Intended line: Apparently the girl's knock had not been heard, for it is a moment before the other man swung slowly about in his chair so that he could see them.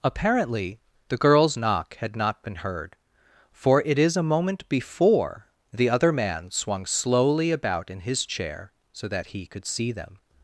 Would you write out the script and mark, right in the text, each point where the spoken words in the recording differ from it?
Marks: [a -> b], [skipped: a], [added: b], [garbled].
Apparently the girl's knock had not been heard, for it is a moment before the other man swung slowly about in his chair so that he could see them.